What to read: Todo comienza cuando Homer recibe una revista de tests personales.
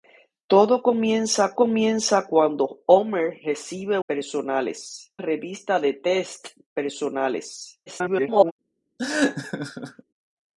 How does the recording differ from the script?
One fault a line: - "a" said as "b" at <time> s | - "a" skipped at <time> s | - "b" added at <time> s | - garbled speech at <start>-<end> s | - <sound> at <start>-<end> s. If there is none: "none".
- "comienza" added at 1.5 s
- "una" said as "personales" at 4.1 s
- garbled speech at 7.9-8.5 s
- laugh at 9.0-10.0 s